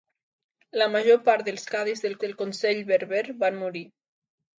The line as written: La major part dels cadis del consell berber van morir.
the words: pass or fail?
fail